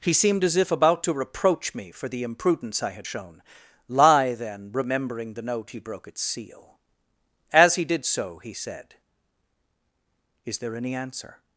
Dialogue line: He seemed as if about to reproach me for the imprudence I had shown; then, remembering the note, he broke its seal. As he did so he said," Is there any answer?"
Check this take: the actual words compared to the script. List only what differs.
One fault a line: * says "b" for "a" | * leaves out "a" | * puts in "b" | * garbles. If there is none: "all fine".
* puts in "lie"